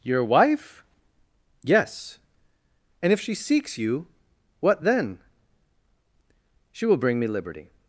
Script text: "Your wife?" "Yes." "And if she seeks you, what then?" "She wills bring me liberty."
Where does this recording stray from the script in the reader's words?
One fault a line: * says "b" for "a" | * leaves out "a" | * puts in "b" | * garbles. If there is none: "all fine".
* says "will" for "wills"